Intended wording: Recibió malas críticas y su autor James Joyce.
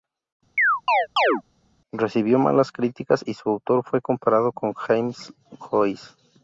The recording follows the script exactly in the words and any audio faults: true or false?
false